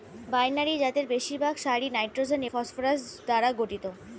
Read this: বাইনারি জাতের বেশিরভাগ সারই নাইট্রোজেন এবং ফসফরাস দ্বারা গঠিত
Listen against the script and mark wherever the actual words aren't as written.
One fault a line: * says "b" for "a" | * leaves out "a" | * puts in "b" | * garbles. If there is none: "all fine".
* leaves out "এবং"